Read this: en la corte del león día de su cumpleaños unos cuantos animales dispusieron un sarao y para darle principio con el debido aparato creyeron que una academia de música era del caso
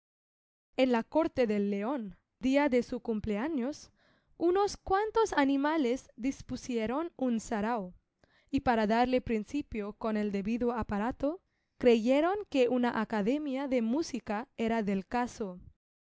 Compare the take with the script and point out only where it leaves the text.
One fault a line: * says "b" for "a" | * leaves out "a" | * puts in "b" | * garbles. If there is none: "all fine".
all fine